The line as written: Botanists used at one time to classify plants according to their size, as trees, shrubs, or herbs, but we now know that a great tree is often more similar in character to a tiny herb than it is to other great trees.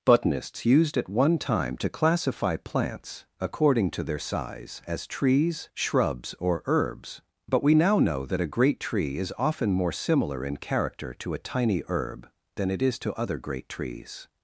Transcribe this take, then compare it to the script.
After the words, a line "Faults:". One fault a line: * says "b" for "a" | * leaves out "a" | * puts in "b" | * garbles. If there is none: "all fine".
Botanists used at one time to classify plants according to their size, as trees, shrubs, or herbs, but we now know that a great tree is often more similar in character to a tiny herb than it is to other great trees.
Faults:
all fine